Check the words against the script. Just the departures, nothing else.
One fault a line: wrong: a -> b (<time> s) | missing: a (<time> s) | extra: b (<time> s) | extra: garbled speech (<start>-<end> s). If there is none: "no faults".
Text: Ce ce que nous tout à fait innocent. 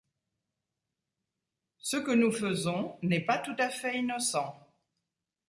missing: ce (2.0 s)
extra: faisons n'est pas (2.3 s)